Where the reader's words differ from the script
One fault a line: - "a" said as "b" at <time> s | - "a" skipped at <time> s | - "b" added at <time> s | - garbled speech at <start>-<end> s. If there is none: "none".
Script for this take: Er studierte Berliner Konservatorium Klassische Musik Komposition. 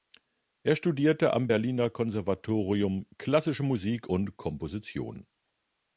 - "am" added at 1.3 s
- "und" added at 4.1 s